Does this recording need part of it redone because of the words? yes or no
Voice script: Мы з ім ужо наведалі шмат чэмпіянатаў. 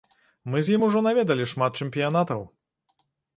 no